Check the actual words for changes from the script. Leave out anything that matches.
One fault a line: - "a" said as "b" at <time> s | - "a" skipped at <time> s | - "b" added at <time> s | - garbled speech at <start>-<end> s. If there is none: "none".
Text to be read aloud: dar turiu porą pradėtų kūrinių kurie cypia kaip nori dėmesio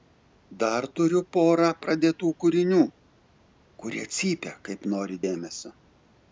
none